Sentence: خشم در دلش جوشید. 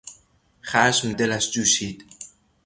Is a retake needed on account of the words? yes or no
yes